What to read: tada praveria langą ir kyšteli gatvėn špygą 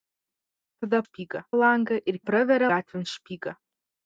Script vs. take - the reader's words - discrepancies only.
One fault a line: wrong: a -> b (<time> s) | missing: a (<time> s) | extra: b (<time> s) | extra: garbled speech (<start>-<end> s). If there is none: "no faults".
wrong: praveria -> špygą (1.0 s)
wrong: kyšteli -> praveria (2.3 s)